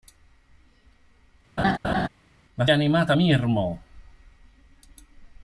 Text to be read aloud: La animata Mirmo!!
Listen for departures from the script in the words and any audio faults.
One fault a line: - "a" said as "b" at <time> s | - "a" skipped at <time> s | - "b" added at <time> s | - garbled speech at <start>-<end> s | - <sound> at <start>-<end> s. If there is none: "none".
- laugh at 1.6-2.1 s